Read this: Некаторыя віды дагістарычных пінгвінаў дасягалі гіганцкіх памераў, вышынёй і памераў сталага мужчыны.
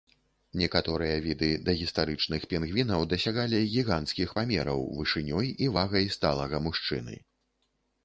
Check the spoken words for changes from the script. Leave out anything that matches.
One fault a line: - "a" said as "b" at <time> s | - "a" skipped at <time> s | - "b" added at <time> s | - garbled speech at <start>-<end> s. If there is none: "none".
- "памераў" said as "вагай" at 5.8 s